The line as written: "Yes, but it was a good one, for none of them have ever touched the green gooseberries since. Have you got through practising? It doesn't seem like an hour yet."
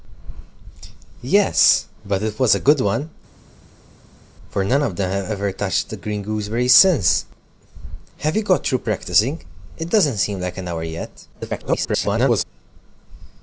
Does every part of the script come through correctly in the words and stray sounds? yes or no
no